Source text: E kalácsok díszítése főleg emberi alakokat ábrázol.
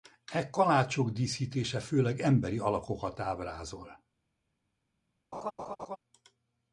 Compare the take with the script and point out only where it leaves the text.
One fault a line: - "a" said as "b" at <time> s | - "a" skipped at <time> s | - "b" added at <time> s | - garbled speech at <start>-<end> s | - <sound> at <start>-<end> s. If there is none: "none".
- laugh at 5.3-6.0 s